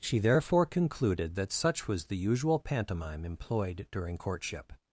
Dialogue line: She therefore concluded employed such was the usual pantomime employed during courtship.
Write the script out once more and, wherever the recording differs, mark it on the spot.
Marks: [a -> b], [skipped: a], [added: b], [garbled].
She therefore concluded [employed -> that] such was the usual pantomime employed during courtship.